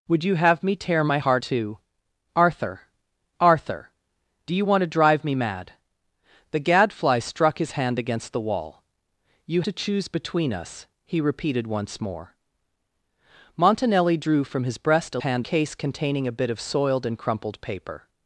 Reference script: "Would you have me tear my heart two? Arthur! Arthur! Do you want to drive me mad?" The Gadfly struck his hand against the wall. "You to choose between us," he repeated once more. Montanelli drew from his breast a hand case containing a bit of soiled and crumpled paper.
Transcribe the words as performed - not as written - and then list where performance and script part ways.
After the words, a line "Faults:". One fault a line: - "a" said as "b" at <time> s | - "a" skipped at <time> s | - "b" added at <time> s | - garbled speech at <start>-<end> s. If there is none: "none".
"Would you have me tear my heart two? Arthur! Arthur! Do you want to drive me mad?" The Gadfly struck his hand against the wall. "You to choose between us," he repeated once more. Montanelli drew from his breast a hand case containing a bit of soiled and crumpled paper.
Faults:
none